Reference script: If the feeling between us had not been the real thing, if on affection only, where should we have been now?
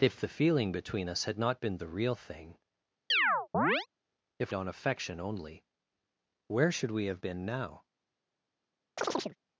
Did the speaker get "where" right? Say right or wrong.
right